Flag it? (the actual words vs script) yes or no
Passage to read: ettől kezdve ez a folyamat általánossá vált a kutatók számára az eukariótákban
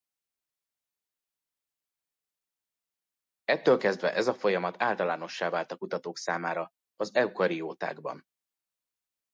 no